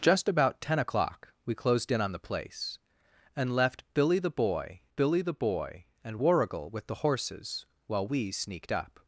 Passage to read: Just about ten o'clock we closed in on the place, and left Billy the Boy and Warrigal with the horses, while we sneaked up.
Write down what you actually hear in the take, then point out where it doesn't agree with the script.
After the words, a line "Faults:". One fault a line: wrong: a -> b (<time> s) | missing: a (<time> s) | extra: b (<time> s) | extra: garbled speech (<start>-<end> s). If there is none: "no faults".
Just about ten o'clock we closed in on the place, and left Billy the Boy Billy the Boy and Warrigal with the horses, while we sneaked up.
Faults:
extra: Billy the Boy (4.9 s)